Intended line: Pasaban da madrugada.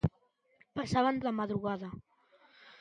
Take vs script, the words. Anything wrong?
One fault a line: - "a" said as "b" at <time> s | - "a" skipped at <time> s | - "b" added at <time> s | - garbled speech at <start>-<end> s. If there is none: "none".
none